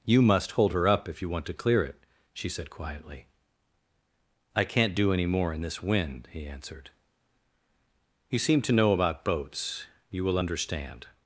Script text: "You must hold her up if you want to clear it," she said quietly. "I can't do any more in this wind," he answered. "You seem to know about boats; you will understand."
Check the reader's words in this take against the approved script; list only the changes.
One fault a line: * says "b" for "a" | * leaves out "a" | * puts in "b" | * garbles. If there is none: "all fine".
all fine